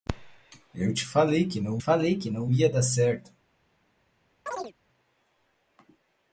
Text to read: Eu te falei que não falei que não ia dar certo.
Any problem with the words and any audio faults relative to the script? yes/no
yes